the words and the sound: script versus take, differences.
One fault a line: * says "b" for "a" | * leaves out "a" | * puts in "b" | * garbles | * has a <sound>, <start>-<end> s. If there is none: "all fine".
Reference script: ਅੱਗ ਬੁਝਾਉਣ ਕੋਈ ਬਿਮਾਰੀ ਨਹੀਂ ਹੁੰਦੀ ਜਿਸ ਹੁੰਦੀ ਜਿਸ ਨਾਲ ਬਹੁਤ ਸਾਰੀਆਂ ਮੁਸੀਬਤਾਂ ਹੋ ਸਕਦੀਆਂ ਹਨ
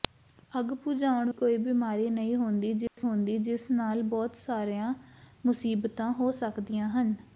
* has a dropout, 2.9-3.0 s